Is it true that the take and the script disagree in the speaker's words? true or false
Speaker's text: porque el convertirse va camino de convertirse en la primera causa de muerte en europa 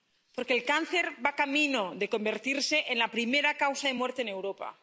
true